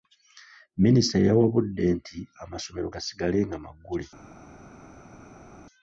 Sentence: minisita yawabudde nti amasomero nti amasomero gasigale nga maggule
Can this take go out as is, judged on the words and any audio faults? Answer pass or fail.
fail